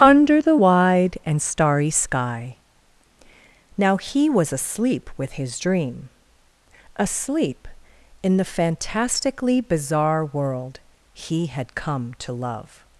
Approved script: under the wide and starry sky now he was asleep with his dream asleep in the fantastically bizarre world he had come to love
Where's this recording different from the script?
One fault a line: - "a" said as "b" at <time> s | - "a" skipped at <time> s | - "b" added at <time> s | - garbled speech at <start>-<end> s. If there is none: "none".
none